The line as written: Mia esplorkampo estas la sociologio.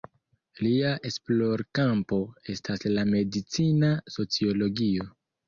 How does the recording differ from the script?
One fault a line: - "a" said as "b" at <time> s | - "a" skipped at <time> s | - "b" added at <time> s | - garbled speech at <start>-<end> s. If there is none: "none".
- "Mia" said as "Lia" at 0.7 s
- "medicina" added at 3.1 s